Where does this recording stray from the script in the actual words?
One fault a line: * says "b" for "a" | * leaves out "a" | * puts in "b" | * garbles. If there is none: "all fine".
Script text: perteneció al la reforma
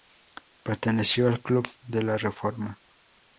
* puts in "club de"